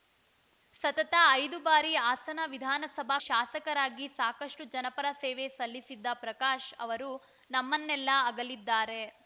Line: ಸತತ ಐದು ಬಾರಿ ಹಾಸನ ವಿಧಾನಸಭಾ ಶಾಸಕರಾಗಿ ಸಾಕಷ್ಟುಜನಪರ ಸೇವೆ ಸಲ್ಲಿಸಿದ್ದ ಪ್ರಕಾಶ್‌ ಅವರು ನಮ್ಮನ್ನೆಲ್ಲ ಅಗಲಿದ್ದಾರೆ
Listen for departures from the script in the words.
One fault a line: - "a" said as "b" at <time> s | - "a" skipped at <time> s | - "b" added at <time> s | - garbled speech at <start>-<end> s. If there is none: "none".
none